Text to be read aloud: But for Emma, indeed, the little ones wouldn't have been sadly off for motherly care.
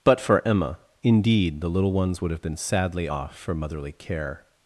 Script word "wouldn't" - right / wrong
wrong